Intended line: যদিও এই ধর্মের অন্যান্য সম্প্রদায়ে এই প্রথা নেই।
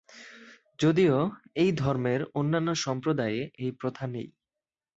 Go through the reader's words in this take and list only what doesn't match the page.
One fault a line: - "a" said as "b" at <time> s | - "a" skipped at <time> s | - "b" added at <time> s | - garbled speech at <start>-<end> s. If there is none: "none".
none